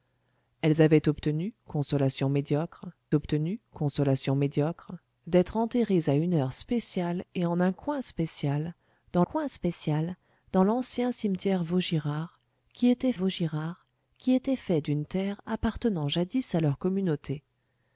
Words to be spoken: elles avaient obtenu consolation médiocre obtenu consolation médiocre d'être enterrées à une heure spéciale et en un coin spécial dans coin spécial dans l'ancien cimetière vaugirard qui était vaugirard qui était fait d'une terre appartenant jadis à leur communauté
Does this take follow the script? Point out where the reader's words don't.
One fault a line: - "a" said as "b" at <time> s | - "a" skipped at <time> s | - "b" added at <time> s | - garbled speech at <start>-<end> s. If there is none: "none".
none